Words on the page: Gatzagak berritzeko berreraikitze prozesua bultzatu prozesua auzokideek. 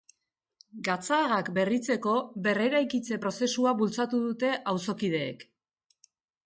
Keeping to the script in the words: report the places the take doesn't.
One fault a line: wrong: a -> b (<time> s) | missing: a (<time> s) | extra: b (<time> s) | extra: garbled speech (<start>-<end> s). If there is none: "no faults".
wrong: prozesua -> dute (4.3 s)